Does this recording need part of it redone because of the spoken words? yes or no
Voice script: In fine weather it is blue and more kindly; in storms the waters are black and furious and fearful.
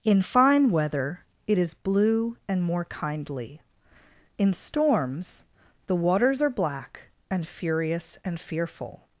no